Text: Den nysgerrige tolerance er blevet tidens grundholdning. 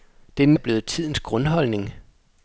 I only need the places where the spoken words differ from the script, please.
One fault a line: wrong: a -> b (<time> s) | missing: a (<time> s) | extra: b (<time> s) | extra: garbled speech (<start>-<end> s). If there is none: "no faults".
missing: nysgerrige tolerance (0.6 s)